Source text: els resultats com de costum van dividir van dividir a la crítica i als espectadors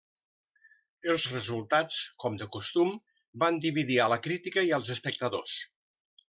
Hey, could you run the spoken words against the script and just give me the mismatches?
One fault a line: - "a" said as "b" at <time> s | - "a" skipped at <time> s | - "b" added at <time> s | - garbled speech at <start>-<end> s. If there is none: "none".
- "van dividir" skipped at 4.0 s